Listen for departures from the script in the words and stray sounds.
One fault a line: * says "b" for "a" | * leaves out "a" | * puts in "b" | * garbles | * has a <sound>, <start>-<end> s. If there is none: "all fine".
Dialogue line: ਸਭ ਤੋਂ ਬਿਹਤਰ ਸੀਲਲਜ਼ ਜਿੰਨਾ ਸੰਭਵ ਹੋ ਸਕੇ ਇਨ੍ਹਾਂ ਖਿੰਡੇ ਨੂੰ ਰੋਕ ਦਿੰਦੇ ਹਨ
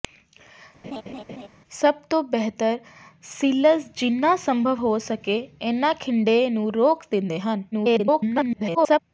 * has a laugh, 0.8-1.5 s
* garbles